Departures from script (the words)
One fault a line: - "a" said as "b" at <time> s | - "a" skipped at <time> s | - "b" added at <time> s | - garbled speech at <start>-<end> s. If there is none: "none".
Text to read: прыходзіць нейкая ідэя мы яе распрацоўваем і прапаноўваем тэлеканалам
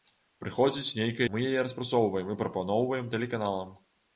- "ідэя" skipped at 1.3 s